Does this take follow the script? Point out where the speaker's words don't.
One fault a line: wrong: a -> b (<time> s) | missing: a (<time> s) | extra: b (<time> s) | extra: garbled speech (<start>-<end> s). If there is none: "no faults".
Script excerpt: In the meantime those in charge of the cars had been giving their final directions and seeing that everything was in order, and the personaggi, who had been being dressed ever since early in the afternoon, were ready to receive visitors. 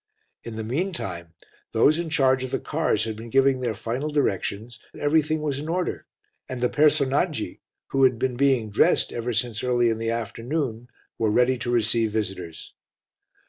missing: and seeing that (4.8 s)